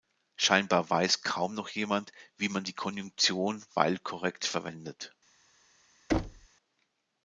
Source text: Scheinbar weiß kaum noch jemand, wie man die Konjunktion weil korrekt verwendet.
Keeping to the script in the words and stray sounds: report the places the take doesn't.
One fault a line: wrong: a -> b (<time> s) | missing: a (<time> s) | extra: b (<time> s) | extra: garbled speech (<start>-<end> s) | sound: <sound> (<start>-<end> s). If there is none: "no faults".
sound: thud (6.1-6.5 s)